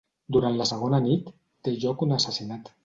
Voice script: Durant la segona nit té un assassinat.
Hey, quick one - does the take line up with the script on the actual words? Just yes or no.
no